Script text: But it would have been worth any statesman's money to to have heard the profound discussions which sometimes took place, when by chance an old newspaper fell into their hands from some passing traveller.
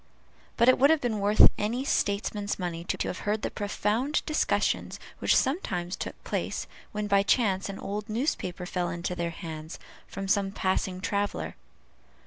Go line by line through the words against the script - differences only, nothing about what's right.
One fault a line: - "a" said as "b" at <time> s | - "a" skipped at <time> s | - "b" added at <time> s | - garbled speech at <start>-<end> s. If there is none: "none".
none